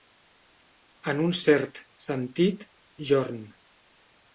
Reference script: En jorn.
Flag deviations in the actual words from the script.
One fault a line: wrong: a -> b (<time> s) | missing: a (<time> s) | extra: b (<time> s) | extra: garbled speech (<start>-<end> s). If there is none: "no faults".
extra: un cert sentit (1.3 s)